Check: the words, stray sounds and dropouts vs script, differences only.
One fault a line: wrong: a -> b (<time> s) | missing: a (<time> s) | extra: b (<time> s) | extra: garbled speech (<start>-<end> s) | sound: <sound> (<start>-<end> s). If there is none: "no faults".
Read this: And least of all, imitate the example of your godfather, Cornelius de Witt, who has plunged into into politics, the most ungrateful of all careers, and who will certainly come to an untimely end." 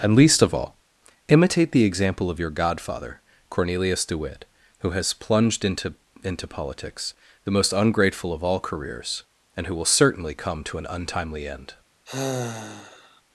sound: sigh (12.1-13.2 s)